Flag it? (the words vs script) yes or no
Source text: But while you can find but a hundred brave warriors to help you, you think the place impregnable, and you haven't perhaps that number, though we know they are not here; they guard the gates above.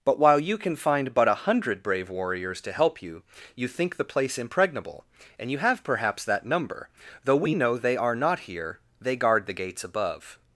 yes